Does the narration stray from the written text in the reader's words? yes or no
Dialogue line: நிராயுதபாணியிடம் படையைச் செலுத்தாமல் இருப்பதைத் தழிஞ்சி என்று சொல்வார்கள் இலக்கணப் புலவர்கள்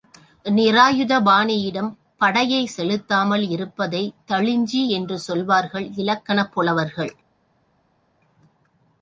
no